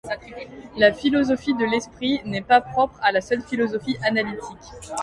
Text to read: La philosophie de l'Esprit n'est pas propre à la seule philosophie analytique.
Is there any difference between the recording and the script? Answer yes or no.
no